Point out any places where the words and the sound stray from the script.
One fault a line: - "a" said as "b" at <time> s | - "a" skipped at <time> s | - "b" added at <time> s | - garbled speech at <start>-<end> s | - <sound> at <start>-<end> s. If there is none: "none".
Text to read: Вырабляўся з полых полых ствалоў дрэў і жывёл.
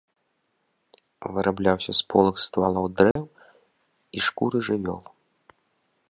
- "полых" skipped at 2.4 s
- dropout at 3.1-3.2 s
- "шкуры" added at 4.3 s